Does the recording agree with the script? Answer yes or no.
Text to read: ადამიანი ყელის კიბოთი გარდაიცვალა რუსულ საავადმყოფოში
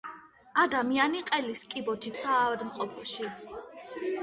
no